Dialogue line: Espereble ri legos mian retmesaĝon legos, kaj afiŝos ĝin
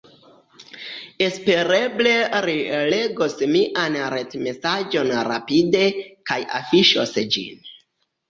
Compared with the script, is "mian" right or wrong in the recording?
right